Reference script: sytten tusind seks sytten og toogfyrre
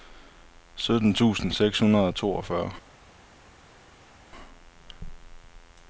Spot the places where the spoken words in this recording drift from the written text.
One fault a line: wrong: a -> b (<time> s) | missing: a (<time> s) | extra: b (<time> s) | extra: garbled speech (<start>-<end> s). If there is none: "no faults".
wrong: sytten -> hundrede (1.8 s)